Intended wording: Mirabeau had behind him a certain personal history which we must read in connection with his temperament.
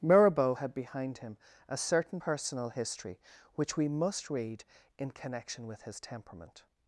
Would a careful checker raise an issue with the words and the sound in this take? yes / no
no